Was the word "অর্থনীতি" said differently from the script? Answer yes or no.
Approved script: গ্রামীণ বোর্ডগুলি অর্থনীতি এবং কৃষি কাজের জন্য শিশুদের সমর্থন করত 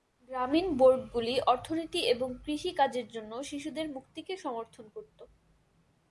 no